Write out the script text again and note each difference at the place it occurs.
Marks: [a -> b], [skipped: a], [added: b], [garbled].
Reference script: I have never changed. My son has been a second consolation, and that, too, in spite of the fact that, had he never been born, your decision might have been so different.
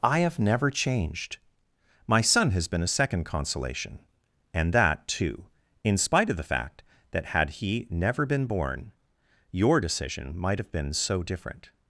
I have never changed. My son has been a second consolation, and that, too, in spite of the fact that, had he never been born, your decision might have been so different.